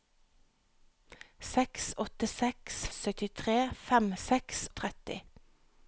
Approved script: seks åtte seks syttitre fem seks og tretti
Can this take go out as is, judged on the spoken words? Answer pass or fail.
pass